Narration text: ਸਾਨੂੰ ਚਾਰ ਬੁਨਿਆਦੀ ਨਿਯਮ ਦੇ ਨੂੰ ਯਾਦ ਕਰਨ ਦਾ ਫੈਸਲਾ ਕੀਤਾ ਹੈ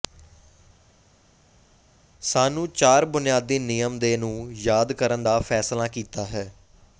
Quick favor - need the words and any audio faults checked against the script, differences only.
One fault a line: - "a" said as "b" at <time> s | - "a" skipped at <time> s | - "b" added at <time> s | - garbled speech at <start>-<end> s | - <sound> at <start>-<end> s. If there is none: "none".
none